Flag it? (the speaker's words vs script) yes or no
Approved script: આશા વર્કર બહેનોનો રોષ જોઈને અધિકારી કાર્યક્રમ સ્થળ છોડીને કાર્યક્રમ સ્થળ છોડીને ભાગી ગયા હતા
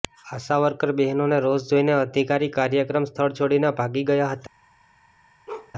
yes